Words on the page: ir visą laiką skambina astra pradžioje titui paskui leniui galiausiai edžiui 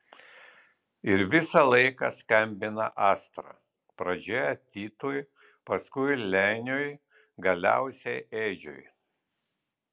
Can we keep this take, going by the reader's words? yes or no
yes